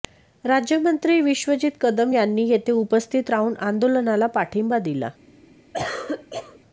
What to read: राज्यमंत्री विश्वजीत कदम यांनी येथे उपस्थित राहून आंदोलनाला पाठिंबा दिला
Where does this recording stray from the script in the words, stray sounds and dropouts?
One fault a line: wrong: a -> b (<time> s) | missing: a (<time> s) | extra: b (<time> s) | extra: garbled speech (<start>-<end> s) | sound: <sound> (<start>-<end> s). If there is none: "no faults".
sound: cough (5.7-6.6 s)